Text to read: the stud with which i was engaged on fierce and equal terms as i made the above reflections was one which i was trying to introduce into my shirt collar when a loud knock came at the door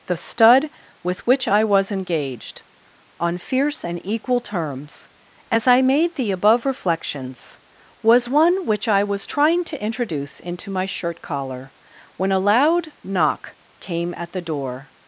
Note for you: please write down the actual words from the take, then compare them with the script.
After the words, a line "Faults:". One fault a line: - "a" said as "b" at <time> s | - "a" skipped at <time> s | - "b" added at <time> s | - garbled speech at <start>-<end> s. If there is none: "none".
the stud with which i was engaged on fierce and equal terms as i made the above reflections was one which i was trying to introduce into my shirt collar when a loud knock came at the door
Faults:
none